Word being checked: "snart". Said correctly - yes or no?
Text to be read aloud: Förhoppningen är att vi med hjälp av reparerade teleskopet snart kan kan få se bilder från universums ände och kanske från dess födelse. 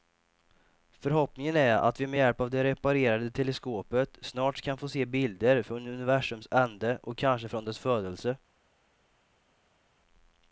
yes